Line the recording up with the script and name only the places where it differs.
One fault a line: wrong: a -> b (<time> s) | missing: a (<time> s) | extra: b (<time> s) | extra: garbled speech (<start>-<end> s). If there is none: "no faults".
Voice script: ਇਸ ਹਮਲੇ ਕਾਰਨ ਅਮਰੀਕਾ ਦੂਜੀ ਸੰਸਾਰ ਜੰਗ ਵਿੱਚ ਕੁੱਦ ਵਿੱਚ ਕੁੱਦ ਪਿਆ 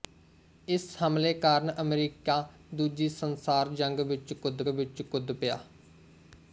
no faults